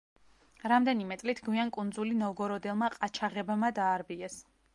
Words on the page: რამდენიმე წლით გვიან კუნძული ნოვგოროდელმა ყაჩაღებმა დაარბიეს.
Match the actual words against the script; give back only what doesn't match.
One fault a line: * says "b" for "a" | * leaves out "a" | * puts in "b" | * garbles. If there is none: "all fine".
all fine